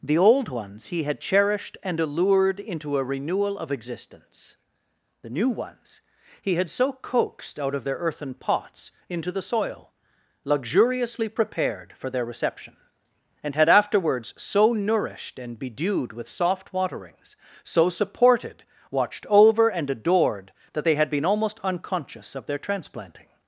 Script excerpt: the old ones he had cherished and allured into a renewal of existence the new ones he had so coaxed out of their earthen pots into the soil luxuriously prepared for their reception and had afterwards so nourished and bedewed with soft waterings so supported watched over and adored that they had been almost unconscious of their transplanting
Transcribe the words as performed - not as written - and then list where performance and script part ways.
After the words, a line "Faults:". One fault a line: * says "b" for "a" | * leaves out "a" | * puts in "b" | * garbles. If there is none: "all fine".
the old ones he had cherished and allured into a renewal of existence the new ones he had so coaxed out of their earthen pots into the soil luxuriously prepared for their reception and had afterwards so nourished and bedewed with soft waterings so supported watched over and adored that they had been almost unconscious of their transplanting
Faults:
all fine